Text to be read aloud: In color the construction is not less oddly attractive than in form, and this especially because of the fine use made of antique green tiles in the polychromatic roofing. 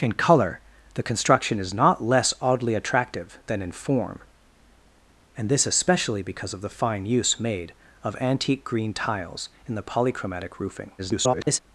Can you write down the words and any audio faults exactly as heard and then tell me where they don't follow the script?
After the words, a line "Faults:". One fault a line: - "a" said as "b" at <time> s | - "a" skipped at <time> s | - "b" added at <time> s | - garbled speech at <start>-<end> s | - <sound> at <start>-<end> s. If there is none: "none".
In color the construction is not less oddly attractive than in form, and this especially because of the fine use made of antique green tiles in the polychromatic roofing. [garbled]
Faults:
- garbled speech at 11.0-11.6 s